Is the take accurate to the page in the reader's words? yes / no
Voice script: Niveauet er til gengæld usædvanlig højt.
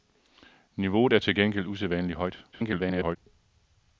no